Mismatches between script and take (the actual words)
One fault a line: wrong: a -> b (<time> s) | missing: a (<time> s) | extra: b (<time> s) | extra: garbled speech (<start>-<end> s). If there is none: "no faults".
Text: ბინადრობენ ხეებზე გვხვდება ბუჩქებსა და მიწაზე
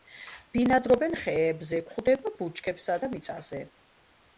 no faults